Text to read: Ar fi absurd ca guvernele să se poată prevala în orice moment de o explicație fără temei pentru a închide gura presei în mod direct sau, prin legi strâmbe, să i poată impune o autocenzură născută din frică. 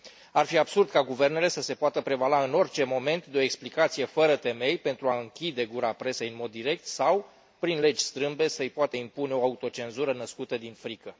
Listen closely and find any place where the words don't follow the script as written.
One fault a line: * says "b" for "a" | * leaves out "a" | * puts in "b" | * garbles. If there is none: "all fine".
all fine